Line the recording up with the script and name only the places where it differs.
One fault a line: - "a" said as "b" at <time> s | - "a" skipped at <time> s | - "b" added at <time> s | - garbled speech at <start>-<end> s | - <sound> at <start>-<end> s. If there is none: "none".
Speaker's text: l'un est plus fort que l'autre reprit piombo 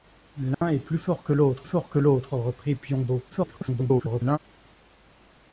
- dropout at 0.5-0.6 s
- "fort que l'autre" added at 1.6 s
- garbled speech at 3.3-4.4 s